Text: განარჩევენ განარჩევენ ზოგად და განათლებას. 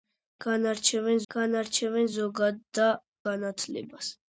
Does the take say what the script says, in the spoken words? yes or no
yes